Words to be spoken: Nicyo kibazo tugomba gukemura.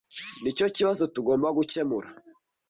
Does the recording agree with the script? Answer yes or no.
yes